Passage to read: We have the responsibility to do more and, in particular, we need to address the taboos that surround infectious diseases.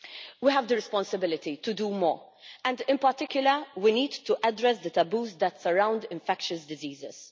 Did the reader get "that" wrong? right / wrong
right